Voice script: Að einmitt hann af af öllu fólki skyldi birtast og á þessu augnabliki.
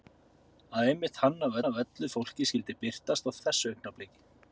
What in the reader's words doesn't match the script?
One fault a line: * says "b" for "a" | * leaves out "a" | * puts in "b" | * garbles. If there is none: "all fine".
all fine